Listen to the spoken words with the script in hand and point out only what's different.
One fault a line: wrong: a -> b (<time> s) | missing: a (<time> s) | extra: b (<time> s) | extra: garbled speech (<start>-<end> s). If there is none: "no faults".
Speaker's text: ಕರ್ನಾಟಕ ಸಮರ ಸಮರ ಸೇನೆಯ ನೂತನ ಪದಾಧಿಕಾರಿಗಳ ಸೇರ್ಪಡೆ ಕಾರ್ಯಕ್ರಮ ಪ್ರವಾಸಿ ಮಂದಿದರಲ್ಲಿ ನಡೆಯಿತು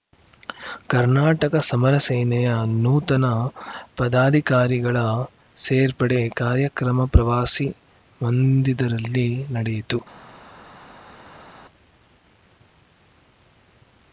missing: ಸಮರ (1.9 s)